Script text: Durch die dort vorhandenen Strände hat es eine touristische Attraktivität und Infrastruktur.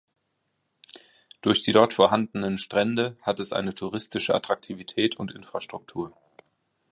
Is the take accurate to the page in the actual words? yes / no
yes